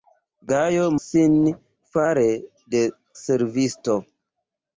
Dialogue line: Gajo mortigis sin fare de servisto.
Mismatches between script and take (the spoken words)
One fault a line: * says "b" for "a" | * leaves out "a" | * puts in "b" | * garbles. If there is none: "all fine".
* leaves out "mortigis"